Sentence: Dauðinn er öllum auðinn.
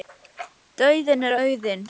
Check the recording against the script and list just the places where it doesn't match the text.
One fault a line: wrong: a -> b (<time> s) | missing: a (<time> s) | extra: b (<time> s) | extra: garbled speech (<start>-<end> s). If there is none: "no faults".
missing: öllum (1.3 s)